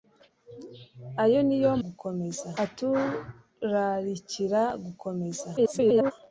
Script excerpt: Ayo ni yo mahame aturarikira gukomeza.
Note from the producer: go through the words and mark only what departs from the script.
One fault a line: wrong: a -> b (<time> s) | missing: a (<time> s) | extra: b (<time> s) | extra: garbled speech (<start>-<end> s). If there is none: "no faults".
wrong: mahame -> gukomeza (1.8 s)
extra: garbled speech (5.6-6.1 s)